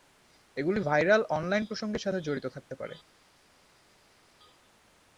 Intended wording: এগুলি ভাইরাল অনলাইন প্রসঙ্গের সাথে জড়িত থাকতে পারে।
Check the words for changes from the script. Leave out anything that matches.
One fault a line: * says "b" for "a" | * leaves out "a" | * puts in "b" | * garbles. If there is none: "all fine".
all fine